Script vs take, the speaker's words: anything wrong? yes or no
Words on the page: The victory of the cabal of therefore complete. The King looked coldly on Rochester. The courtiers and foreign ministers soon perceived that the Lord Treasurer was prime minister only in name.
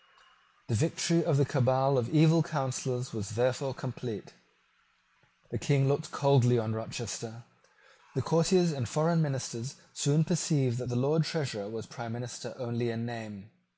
yes